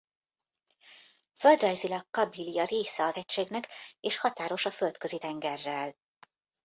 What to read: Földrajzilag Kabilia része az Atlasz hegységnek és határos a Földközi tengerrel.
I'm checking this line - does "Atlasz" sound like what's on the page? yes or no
no